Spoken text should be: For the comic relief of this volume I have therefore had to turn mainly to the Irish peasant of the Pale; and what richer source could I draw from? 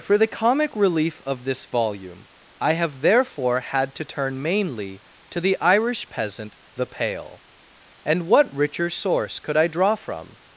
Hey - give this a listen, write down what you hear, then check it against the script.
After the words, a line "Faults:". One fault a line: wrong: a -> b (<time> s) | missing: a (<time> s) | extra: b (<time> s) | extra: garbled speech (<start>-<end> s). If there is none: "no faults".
For the comic relief of this volume I have therefore had to turn mainly to the Irish peasant the Pale; and what richer source could I draw from?
Faults:
missing: of (6.6 s)